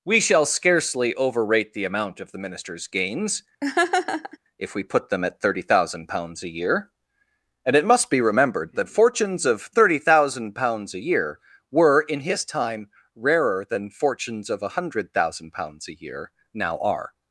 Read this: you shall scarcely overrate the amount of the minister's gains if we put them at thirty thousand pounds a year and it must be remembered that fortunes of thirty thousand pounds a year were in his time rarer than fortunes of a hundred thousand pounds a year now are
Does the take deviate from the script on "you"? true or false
true